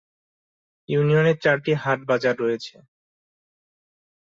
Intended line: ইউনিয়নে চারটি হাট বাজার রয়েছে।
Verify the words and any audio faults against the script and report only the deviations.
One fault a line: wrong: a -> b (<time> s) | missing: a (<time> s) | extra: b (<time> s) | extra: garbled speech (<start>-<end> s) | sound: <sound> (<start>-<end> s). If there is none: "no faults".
no faults